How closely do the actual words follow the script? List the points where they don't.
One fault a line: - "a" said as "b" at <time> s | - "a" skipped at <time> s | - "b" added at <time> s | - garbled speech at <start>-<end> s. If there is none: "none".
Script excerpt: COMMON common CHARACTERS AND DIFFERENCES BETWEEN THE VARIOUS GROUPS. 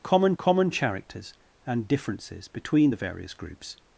none